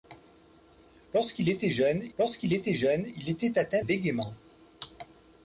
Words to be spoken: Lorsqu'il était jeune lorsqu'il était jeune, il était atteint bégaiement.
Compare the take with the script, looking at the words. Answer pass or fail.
pass